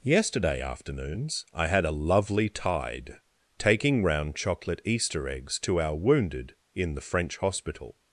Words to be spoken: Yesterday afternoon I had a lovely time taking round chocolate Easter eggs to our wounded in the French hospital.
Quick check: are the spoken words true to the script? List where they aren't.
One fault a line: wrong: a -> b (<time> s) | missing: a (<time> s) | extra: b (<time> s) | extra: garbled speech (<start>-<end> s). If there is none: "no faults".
wrong: afternoon -> afternoons (0.6 s)
wrong: time -> tide (2.5 s)